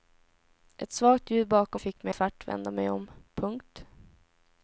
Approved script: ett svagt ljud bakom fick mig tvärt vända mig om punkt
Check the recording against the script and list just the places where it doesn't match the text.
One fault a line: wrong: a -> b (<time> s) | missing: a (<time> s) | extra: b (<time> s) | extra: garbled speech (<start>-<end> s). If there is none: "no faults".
no faults